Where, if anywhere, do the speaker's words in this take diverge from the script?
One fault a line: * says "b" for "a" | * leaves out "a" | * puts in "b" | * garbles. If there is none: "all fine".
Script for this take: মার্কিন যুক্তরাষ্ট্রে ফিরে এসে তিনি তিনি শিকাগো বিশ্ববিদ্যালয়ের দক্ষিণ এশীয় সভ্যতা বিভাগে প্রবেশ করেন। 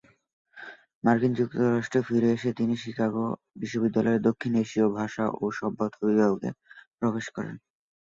* leaves out "তিনি"
* puts in "ভাষা ও"